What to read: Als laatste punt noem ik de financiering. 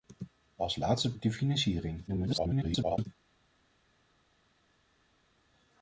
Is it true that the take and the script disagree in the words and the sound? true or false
true